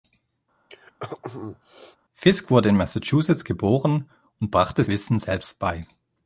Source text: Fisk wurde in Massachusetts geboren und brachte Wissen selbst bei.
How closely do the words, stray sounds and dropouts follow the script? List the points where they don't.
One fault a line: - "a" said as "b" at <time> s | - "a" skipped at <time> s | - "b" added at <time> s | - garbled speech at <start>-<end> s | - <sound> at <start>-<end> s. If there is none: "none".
- throat clearing at 0.7-2.0 s